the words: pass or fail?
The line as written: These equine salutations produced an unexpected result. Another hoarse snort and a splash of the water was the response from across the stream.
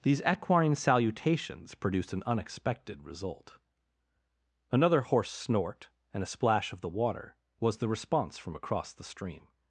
pass